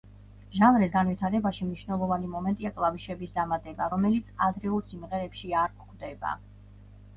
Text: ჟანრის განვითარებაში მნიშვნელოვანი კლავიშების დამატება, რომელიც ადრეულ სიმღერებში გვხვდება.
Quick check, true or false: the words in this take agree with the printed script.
false